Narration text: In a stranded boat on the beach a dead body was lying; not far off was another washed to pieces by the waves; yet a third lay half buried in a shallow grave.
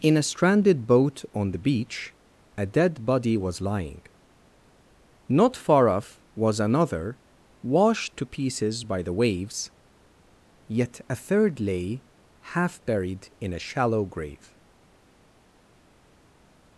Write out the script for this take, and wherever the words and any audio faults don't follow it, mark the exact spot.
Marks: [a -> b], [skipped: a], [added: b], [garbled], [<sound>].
In a stranded boat on the beach a dead body was lying; not far off was another washed to pieces by the waves; yet a third lay half buried in a shallow grave.